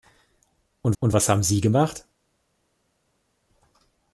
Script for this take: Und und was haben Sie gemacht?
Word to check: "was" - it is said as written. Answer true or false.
true